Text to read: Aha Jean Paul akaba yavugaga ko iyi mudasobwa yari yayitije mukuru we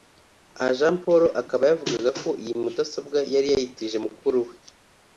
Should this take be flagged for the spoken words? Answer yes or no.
no